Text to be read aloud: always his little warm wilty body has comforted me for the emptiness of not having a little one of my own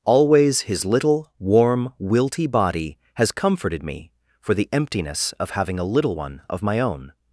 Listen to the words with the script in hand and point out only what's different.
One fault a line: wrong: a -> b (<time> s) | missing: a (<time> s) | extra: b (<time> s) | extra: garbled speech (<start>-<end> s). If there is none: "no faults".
missing: not (5.5 s)